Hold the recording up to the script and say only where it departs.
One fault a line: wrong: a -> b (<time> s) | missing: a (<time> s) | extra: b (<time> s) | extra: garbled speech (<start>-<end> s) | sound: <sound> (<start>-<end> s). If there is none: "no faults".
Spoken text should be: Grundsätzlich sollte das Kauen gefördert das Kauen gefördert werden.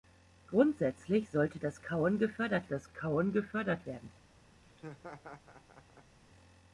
sound: laugh (4.6-6.2 s)